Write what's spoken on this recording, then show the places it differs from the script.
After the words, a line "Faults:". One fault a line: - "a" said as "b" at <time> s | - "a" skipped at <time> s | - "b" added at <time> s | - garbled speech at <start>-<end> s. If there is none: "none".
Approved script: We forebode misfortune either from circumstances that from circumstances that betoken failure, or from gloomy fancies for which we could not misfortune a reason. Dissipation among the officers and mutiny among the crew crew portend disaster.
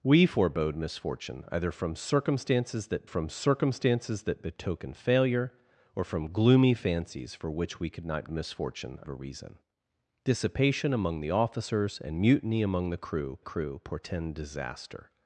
We forebode misfortune either from circumstances that from circumstances that betoken failure, or from gloomy fancies for which we could not misfortune a reason. Dissipation among the officers and mutiny among the crew crew portend disaster.
Faults:
none